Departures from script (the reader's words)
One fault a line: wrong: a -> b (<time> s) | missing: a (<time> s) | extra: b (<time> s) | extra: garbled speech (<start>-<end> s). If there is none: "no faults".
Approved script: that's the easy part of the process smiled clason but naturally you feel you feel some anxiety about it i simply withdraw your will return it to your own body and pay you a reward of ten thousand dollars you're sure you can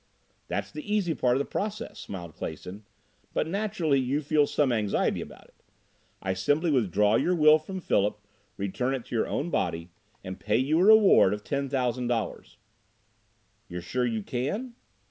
missing: you feel (4.5 s)
extra: from philip (7.6 s)